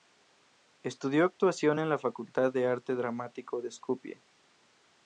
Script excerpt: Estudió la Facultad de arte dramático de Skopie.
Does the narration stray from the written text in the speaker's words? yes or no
yes